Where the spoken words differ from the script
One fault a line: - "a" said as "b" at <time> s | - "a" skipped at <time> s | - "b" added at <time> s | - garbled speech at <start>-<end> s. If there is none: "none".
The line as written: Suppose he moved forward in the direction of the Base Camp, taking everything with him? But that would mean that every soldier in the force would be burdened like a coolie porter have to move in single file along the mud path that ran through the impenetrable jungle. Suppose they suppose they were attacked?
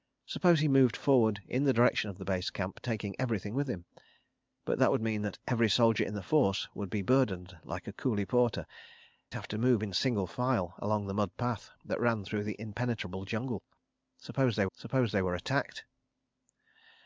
none